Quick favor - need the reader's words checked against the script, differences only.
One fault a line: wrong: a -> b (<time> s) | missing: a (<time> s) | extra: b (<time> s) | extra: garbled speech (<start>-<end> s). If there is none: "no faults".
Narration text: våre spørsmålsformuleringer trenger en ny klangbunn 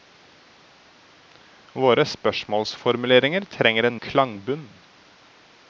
missing: ny (4.0 s)